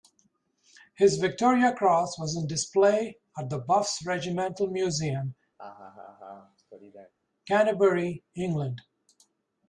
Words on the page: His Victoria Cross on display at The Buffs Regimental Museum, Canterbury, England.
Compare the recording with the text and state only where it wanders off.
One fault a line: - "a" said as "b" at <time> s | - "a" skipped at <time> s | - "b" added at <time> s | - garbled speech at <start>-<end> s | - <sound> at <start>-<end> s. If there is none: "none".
- "was" added at 2.2 s
- laugh at 5.6-7.1 s